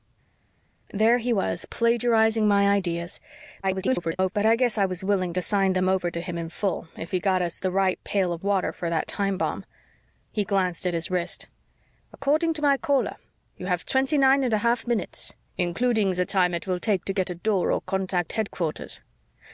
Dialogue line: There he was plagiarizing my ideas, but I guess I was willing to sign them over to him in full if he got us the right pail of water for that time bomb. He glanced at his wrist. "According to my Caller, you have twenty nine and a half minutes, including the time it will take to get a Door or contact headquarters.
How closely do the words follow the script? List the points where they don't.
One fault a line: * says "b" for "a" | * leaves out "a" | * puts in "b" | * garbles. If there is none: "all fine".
* garbles